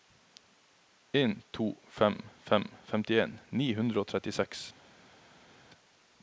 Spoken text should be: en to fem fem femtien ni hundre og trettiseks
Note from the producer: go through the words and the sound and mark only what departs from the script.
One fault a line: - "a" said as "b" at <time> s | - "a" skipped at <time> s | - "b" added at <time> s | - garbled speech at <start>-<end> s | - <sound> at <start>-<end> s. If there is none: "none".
none